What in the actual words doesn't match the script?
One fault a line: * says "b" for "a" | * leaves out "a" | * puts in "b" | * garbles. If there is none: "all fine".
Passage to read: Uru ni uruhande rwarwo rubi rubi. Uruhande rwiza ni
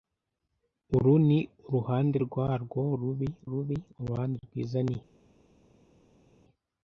all fine